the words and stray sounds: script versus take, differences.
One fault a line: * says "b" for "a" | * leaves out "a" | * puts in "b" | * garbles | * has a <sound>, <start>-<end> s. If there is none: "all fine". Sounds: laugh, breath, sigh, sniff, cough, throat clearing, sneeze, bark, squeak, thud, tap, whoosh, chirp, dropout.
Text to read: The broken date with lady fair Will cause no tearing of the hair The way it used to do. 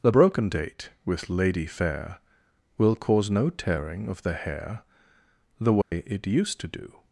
* has a dropout, 5.8-5.9 s